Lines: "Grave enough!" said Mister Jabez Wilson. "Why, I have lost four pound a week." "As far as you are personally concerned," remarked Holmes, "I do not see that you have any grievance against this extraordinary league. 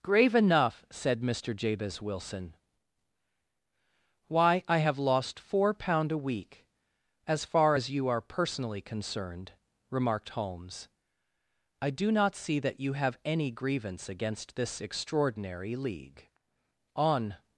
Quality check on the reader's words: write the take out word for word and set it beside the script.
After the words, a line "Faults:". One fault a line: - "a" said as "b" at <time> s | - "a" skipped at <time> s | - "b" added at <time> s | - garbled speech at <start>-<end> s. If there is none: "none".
"Grave enough!" said Mister Jabez Wilson. "Why, I have lost four pound a week." "As far as you are personally concerned," remarked Holmes, "I do not see that you have any grievance against this extraordinary league. On
Faults:
- "On" added at 16.9 s